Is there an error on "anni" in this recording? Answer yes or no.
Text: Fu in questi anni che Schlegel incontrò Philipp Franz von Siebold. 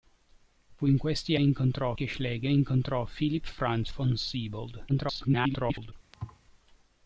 yes